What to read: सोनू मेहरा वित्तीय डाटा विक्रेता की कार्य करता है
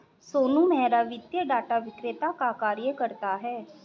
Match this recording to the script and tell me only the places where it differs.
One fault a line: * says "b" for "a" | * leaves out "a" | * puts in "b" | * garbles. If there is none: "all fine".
* says "का" for "की"